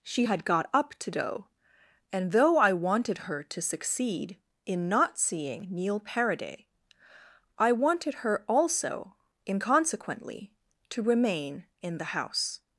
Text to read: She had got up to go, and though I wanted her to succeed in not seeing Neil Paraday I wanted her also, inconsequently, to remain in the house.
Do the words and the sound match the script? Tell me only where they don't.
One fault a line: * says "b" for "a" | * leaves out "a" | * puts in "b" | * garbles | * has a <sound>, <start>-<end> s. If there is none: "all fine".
* says "do" for "go"